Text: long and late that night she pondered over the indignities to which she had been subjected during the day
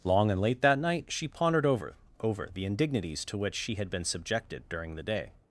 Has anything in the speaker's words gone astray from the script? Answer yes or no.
yes